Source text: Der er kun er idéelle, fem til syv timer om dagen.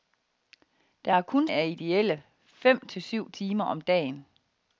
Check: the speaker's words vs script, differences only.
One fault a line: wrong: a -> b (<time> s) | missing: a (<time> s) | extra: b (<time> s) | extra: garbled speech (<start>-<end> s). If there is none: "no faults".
no faults